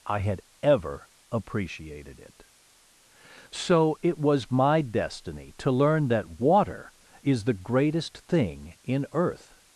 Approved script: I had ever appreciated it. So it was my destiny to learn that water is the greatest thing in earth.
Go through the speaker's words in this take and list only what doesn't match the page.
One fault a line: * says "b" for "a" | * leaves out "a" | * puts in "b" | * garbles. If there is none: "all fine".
all fine